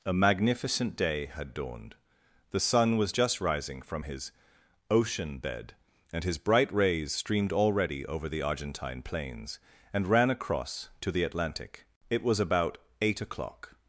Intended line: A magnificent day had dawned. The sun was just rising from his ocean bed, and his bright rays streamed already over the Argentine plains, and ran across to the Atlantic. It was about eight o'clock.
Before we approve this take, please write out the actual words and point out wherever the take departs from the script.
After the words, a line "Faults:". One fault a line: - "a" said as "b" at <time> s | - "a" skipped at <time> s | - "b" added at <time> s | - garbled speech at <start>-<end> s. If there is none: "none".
A magnificent day had dawned. The sun was just rising from his ocean bed, and his bright rays streamed already over the Argentine plains, and ran across to the Atlantic. It was about eight o'clock.
Faults:
none